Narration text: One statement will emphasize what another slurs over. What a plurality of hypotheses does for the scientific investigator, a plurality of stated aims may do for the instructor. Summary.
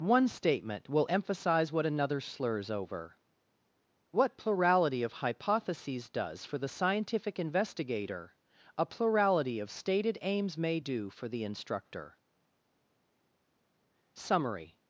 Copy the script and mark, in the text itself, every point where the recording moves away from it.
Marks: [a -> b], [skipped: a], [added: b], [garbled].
One statement will emphasize what another slurs over. What [skipped: a] plurality of hypotheses does for the scientific investigator, a plurality of stated aims may do for the instructor. Summary.